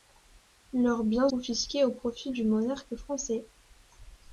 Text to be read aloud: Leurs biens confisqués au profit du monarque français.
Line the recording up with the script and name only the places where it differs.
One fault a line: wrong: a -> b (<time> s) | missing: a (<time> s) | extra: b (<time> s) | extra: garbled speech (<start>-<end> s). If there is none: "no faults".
no faults